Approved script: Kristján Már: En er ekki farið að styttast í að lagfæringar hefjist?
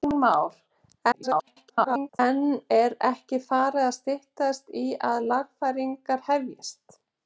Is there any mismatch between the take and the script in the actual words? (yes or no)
yes